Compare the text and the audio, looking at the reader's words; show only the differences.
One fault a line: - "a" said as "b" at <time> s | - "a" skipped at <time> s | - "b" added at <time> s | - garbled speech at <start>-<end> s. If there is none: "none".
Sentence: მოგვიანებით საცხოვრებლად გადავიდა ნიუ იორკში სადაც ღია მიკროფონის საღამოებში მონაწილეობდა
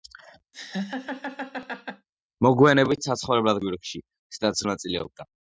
- "გადავიდა ნიუ" skipped at 3.6 s
- "ღია მიკროფონის საღამოებში" skipped at 4.7 s